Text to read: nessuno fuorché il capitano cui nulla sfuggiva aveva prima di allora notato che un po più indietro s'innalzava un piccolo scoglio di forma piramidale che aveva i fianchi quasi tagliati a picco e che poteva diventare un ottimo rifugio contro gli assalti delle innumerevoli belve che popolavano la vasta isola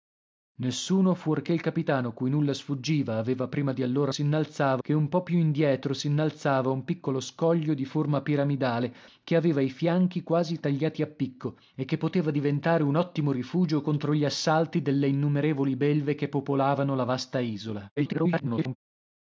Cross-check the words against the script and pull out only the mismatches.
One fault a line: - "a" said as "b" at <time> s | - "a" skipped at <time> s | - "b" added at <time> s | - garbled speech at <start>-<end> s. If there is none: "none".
- "notato" said as "s'innalzava" at 4.1 s
- garbled speech at 18.0-18.8 s